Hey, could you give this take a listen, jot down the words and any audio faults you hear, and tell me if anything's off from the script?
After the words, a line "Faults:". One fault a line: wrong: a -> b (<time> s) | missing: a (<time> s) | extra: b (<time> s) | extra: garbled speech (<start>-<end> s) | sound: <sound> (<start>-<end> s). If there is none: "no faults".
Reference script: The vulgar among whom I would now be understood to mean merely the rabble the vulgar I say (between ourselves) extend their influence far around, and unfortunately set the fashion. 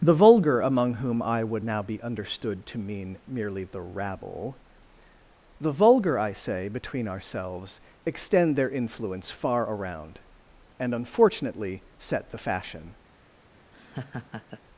The vulgar among whom I would now be understood to mean merely the rabble the vulgar I say (between ourselves) extend their influence far around, and unfortunately set the fashion.
Faults:
sound: laugh (13.7-14.6 s)